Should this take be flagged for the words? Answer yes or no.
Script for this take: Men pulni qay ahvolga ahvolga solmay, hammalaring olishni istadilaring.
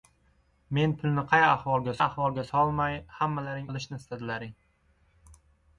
no